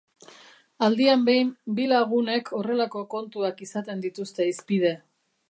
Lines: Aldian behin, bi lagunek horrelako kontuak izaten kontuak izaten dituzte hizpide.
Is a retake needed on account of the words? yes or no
yes